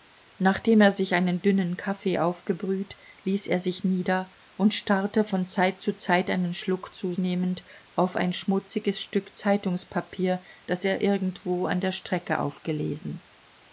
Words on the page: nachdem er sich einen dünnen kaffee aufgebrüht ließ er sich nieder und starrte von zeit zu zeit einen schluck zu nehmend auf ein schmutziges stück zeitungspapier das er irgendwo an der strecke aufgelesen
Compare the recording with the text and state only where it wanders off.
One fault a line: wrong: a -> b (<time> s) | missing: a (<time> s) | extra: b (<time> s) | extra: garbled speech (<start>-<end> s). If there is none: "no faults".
no faults